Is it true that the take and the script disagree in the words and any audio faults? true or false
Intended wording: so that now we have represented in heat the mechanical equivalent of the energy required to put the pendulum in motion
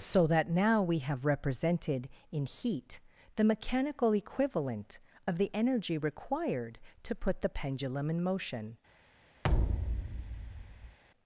true